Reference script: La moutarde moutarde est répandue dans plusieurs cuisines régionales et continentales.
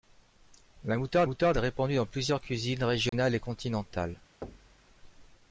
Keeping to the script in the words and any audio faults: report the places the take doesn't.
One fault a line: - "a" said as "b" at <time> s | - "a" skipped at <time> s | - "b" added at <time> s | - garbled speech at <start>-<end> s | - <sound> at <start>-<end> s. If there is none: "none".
- dropout at 3.1-3.1 s
- thud at 4.4-4.9 s